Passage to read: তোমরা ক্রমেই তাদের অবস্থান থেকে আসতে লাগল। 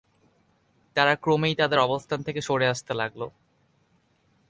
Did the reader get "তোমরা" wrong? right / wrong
wrong